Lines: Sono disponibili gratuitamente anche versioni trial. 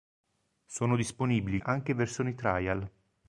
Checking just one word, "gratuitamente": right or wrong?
wrong